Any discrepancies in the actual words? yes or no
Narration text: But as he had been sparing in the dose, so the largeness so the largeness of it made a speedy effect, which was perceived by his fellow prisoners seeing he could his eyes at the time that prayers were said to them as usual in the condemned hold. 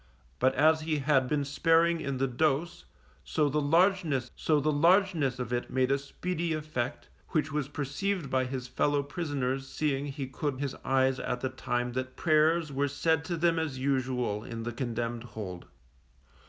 no